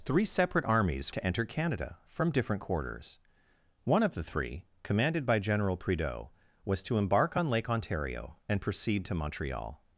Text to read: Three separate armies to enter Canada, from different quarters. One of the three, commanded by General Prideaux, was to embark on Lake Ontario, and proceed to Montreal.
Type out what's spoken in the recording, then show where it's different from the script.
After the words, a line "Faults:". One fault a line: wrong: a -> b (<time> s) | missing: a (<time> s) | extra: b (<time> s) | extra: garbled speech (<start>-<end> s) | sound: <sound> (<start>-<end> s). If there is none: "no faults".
Three separate armies to enter Canada, from different quarters. One of the three, commanded by General Prideaux, was to embark on Lake Ontario, and proceed to Montreal.
Faults:
no faults